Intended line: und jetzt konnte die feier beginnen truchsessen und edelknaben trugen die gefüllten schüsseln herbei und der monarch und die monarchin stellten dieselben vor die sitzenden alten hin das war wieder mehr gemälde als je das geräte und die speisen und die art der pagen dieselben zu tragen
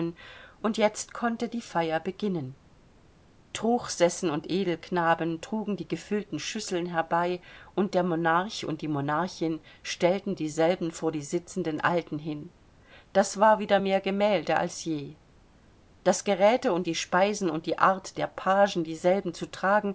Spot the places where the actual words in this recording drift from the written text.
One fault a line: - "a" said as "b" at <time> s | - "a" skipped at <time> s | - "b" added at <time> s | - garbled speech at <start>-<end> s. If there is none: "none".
none